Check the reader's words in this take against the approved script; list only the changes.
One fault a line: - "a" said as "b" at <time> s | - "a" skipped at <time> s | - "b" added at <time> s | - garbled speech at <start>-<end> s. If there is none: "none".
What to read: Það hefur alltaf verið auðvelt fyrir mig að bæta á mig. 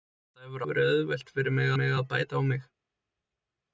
- "alltaf" skipped at 0.6 s
- "mig" added at 1.8 s